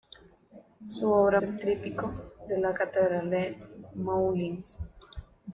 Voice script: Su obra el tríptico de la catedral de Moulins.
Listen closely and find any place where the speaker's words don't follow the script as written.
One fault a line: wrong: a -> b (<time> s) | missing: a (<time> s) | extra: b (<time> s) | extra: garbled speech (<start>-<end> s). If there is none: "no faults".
no faults